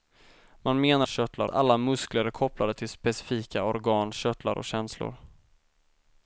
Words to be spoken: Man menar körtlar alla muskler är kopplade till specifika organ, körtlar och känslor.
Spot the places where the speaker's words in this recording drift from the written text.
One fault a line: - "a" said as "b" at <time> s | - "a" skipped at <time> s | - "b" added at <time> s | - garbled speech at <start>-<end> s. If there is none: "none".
none